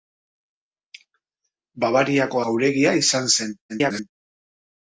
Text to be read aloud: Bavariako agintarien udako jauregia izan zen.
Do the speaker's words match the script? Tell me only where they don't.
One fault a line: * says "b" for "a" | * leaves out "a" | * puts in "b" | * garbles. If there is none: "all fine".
* leaves out "agintarien udako"
* garbles